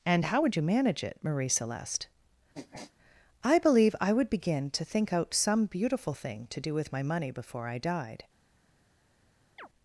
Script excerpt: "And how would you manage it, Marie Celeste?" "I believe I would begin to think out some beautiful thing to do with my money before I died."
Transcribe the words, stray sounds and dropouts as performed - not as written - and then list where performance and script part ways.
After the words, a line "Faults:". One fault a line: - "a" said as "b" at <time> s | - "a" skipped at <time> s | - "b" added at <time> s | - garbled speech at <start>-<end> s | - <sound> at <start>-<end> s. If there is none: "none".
"And how would you manage it, Marie Celeste?" "I believe I would begin to think out some beautiful thing to do with my money before I died."
Faults:
- sniff at 2.5-2.9 s
- chirp at 9.6-9.7 s